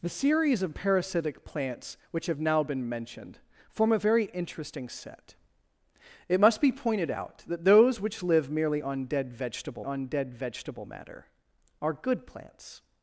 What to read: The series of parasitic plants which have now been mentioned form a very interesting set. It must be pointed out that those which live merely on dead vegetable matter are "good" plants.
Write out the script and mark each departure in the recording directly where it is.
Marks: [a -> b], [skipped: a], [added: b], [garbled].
The series of parasitic plants which have now been mentioned form a very interesting set. It must be pointed out that those which live merely on dead vegetable [added: on dead vegetable] matter are "good" plants.